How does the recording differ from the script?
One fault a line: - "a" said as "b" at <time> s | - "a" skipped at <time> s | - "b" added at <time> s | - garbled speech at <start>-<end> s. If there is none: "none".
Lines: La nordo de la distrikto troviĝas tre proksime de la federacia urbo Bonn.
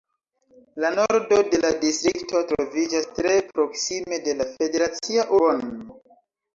- "urbo" skipped at 5.3 s